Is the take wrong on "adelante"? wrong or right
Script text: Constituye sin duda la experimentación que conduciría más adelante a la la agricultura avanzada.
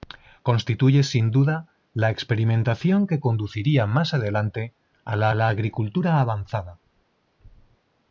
right